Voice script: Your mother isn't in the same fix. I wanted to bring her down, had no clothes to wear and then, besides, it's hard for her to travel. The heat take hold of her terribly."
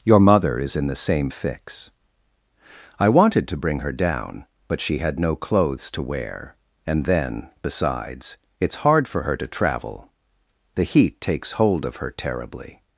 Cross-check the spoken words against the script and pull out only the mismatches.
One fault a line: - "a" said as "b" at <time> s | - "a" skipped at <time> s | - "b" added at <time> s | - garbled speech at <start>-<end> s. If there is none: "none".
- "isn't" said as "is" at 0.6 s
- "but she" added at 4.7 s
- "take" said as "takes" at 11.2 s